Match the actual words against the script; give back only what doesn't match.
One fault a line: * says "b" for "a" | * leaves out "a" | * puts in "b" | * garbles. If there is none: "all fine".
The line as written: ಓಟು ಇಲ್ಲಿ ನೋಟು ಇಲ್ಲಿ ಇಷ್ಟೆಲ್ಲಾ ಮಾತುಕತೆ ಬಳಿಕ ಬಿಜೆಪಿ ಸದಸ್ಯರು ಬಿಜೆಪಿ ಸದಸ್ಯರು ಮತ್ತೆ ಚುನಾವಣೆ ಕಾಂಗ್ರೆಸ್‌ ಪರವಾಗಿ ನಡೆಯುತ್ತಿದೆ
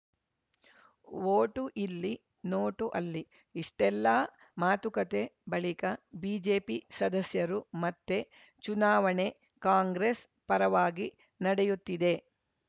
* says "ಅಲ್ಲಿ" for "ಇಲ್ಲಿ"
* leaves out "ಬಿಜೆಪಿ ಸದಸ್ಯರು"